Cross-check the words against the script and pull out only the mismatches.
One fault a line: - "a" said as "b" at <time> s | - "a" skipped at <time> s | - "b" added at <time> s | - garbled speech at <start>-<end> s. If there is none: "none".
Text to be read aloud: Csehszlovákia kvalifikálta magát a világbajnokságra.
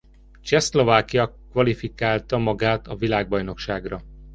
none